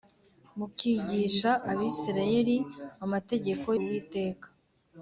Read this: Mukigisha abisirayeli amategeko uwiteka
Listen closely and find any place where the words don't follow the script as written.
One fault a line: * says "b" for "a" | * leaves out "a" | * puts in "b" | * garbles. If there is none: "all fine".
all fine